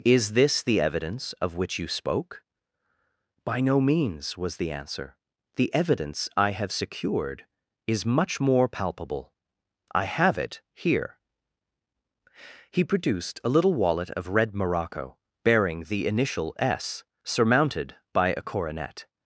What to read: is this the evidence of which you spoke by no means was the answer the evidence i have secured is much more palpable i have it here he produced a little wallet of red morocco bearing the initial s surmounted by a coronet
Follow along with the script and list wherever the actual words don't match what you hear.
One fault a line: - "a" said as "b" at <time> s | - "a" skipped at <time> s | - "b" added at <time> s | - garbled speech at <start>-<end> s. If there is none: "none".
none